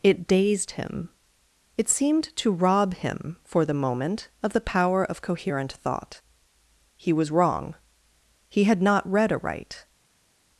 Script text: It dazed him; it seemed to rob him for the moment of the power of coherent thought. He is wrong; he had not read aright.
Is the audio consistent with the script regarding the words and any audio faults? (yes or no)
no